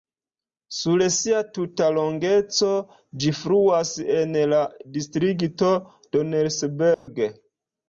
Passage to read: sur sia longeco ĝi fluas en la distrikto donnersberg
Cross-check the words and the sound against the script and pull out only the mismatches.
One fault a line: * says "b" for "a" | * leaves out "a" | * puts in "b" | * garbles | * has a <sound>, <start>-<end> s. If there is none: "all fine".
* puts in "tuta"
* has a dropout, 6.9-7.1 s